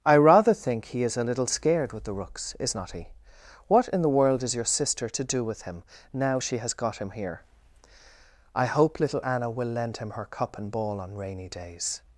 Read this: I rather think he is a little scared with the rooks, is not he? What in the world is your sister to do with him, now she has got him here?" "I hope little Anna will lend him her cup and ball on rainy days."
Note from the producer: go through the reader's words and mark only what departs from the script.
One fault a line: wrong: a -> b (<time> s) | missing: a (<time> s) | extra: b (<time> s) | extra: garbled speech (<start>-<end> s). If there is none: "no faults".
no faults